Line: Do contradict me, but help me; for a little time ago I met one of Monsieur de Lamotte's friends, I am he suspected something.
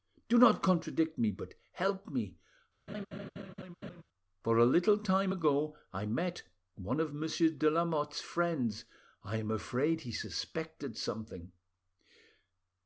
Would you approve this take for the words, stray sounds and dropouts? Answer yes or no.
no